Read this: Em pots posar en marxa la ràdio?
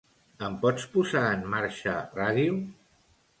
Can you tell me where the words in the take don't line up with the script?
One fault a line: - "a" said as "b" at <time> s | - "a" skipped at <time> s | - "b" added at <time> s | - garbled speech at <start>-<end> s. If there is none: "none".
- "la" skipped at 2.0 s